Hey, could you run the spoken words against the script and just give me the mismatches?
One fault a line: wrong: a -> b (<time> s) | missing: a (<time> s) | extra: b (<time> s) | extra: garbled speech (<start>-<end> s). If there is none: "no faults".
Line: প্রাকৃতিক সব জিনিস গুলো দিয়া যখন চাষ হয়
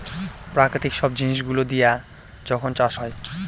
no faults